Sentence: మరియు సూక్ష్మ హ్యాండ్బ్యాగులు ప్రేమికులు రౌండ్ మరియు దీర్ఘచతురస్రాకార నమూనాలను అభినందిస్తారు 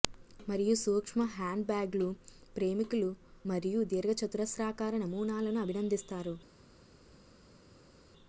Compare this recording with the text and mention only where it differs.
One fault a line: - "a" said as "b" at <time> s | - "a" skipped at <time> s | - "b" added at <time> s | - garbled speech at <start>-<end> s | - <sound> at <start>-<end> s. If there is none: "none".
- "రౌండ్" skipped at 3.1 s